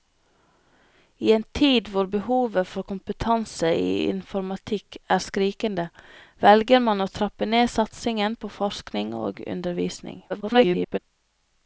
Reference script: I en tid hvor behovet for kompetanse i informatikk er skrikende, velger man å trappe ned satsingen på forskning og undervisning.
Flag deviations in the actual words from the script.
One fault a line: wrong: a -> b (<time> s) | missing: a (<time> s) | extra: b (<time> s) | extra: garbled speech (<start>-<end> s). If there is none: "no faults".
extra: garbled speech (10.3-11.0 s)